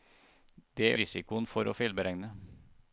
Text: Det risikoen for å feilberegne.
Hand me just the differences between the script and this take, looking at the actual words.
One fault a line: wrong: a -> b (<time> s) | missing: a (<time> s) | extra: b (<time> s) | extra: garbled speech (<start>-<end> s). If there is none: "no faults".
no faults